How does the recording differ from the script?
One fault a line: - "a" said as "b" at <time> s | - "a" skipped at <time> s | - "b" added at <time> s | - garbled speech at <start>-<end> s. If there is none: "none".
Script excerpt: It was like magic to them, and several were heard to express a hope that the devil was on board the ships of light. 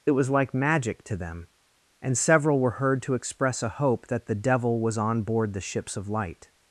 none